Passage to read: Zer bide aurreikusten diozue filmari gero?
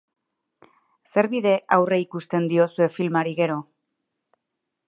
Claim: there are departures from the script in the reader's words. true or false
false